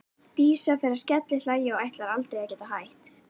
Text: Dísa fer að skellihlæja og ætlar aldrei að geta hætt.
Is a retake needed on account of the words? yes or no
no